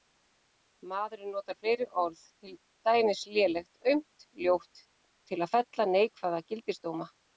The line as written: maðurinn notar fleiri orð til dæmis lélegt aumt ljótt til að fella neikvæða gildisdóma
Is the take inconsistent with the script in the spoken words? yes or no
no